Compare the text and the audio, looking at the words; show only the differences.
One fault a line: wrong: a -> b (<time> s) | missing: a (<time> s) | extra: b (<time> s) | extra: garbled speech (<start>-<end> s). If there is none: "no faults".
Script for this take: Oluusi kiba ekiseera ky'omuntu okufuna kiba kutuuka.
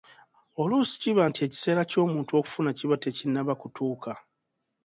extra: nti (1.3 s)
extra: tekinnaba (3.0 s)